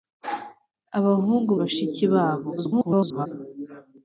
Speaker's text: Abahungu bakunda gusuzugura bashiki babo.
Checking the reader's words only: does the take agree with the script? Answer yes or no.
no